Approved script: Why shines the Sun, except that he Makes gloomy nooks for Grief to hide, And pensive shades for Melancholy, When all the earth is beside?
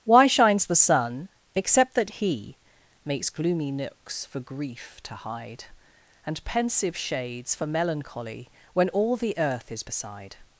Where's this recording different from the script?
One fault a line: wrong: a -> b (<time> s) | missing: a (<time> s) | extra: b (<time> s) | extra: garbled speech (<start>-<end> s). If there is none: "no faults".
no faults